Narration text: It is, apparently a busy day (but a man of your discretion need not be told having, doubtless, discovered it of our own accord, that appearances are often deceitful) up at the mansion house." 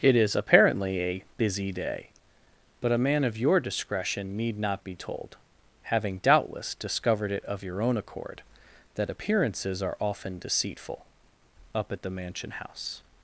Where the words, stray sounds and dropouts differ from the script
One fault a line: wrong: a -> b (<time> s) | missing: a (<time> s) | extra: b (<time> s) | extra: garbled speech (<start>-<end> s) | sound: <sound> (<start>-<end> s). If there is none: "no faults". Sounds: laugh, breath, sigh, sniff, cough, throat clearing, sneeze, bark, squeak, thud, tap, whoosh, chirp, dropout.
wrong: our -> your (7.6 s)